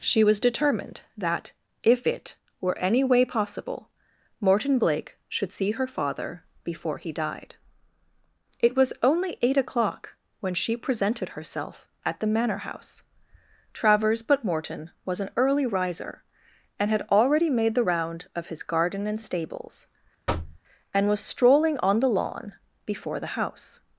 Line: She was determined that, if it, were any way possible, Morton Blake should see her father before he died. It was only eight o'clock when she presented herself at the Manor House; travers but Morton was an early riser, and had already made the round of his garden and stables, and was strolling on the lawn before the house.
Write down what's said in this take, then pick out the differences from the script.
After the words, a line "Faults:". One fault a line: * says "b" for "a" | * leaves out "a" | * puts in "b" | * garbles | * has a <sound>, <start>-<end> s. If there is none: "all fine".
She was determined that, if it, were any way possible, Morton Blake should see her father before he died. It was only eight o'clock when she presented herself at the Manor House; travers but Morton was an early riser, and had already made the round of his garden and stables, and was strolling on the lawn before the house.
Faults:
* has a thud, 20.3-20.6 s